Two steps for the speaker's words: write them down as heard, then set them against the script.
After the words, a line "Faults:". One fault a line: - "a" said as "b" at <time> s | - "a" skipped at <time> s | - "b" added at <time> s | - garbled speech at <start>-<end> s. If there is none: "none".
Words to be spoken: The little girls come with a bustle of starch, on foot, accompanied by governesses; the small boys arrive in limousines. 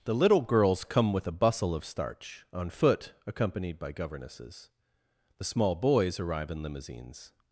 The little girls come with a bustle of starch, on foot, accompanied by governesses; the small boys arrive in limousines.
Faults:
none